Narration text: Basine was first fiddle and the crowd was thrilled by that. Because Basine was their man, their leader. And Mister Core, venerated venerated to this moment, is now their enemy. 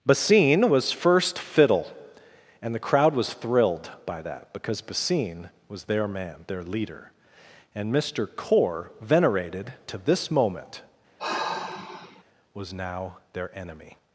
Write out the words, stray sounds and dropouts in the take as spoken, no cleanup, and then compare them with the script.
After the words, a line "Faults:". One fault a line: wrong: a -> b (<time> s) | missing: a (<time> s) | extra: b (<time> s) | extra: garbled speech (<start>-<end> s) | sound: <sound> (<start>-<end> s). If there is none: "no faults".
Basine was first fiddle and the crowd was thrilled by that. Because Basine was their man, their leader. And Mister Core, venerated to this moment, was now their enemy.
Faults:
missing: venerated (9.7 s)
sound: sigh (11.2-12.2 s)
wrong: is -> was (12.5 s)